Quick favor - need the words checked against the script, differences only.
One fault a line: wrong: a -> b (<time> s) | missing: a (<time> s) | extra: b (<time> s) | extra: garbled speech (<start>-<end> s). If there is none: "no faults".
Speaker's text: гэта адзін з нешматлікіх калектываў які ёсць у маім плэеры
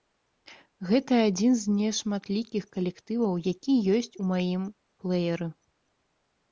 no faults